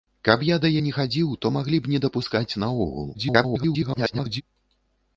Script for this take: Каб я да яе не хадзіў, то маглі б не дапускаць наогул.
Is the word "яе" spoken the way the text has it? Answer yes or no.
no